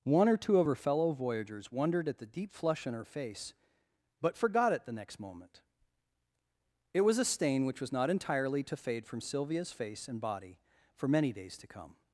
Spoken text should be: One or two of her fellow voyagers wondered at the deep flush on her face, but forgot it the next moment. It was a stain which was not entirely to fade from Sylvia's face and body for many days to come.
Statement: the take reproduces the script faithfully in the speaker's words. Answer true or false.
true